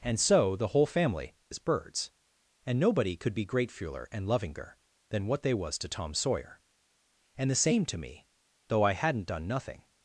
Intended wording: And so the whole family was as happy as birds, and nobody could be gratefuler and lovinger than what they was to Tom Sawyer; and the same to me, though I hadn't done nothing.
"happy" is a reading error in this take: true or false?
true